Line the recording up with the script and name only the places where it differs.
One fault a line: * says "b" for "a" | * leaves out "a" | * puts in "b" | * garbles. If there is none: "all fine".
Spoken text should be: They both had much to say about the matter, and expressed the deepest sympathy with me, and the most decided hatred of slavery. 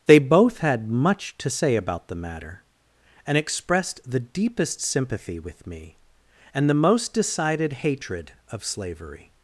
all fine